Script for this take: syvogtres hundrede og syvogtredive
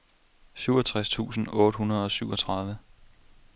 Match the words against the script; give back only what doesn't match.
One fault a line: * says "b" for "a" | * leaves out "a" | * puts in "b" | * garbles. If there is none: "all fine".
* puts in "tusind otte"